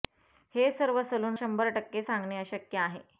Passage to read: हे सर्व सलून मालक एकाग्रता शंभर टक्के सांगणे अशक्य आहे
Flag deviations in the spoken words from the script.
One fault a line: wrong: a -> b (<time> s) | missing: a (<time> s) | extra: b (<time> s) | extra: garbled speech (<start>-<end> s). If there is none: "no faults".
missing: मालक एकाग्रता (1.4 s)